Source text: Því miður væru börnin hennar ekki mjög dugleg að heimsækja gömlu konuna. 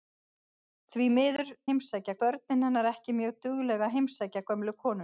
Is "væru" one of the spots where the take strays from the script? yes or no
yes